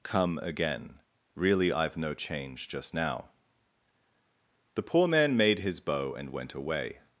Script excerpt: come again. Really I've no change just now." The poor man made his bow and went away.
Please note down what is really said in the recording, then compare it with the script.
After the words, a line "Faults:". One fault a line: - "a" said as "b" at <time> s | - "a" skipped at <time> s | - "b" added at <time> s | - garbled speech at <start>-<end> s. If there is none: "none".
come again. Really I've no change just now." The poor man made his bow and went away.
Faults:
none